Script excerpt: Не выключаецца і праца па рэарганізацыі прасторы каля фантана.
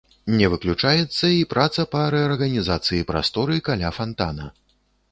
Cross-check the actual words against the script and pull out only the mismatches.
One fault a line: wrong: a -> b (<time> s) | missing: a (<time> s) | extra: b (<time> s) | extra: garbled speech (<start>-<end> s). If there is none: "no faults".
no faults